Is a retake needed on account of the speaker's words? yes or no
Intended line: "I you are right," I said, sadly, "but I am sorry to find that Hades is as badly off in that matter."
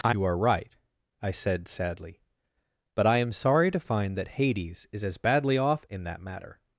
no